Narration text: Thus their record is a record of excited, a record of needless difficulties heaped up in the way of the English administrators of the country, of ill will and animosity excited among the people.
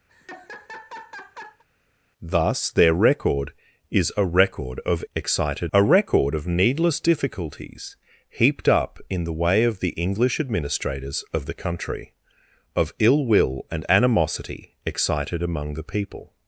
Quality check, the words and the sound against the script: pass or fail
fail